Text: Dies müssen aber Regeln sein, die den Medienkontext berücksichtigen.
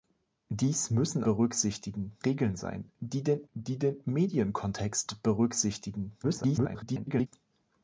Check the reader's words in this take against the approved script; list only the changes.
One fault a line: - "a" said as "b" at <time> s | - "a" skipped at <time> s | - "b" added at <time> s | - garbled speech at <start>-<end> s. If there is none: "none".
- "aber" said as "berücksichtigen" at 1.2 s
- "die den" added at 3.5 s
- garbled speech at 6.2-7.3 s